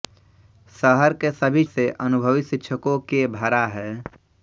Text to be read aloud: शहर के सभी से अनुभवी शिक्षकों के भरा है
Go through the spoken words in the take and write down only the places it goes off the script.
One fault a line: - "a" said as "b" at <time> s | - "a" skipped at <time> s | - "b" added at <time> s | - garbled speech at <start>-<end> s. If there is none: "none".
none